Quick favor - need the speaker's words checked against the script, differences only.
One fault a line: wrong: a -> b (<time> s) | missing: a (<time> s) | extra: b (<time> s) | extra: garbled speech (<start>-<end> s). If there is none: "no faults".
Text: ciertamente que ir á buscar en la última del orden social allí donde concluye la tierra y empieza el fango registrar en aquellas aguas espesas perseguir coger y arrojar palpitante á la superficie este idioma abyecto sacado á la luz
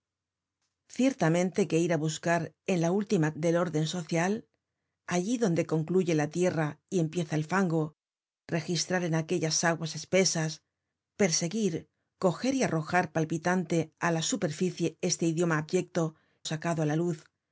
no faults